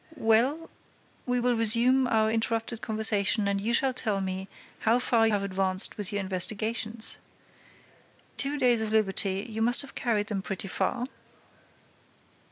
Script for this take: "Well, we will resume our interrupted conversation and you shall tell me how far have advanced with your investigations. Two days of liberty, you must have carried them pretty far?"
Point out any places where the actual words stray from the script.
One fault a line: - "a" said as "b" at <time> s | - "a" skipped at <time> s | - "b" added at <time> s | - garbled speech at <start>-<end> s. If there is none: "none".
none